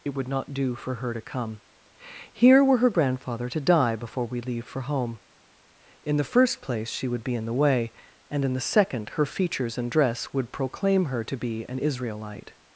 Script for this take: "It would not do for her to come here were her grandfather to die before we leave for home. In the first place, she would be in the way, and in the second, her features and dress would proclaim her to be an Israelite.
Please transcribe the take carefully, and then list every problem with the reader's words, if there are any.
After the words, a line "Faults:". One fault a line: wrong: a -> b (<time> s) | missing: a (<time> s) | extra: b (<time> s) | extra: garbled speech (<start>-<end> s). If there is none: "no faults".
"It would not do for her to come here were her grandfather to die before we leave for home. In the first place, she would be in the way, and in the second, her features and dress would proclaim her to be an Israelite.
Faults:
no faults